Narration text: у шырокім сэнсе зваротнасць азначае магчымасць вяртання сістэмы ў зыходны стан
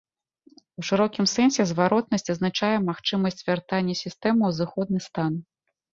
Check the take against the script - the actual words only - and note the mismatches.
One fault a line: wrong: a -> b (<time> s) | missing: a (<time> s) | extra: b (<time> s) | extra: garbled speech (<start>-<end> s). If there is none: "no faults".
no faults